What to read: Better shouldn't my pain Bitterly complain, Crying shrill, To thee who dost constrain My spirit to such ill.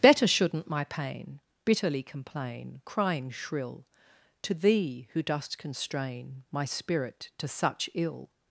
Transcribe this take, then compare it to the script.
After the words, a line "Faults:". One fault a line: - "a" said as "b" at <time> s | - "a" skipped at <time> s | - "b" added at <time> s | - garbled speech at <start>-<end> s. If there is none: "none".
Better shouldn't my pain Bitterly complain, Crying shrill, To thee who dost constrain My spirit to such ill.
Faults:
none